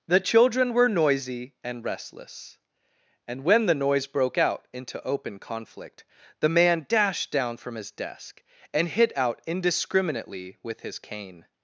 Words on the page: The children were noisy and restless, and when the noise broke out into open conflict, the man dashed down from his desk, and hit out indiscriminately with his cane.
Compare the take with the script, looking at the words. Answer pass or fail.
pass